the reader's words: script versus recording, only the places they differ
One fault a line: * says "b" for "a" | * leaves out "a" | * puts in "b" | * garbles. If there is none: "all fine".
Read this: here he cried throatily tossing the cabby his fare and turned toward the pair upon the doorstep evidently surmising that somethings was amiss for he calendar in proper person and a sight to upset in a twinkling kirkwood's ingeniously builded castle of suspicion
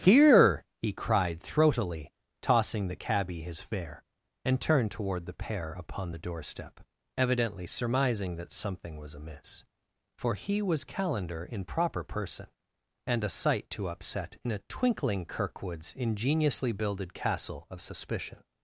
* says "something" for "somethings"
* puts in "was"